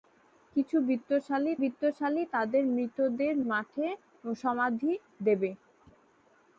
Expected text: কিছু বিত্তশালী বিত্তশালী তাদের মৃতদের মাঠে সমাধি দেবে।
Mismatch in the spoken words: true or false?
false